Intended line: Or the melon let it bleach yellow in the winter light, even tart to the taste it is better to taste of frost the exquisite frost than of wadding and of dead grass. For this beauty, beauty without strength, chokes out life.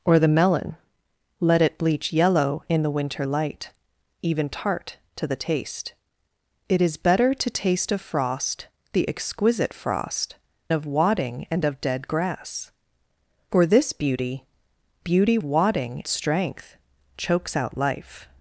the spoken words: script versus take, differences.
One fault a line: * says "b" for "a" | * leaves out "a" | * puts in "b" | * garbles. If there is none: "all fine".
* leaves out "than"
* says "wadding" for "without"